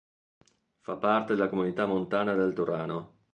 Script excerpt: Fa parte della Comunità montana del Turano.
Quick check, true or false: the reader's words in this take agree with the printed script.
true